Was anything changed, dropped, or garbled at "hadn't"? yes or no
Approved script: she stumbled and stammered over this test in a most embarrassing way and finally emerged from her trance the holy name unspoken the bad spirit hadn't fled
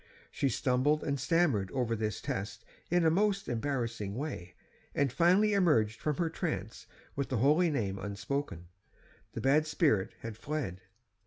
yes